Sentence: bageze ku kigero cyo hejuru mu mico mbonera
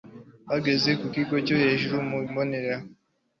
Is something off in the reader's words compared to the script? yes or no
yes